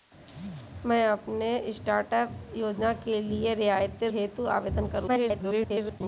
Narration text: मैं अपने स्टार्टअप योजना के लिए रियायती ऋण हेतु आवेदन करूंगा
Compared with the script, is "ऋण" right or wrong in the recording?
wrong